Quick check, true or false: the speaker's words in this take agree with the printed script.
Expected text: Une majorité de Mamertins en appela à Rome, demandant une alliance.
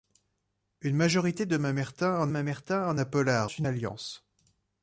false